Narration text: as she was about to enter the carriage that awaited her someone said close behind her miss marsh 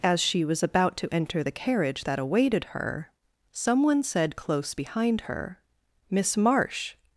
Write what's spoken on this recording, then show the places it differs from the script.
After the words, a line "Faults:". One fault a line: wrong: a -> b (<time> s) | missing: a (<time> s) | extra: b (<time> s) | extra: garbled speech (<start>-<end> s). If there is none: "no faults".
as she was about to enter the carriage that awaited her someone said close behind her miss marsh
Faults:
no faults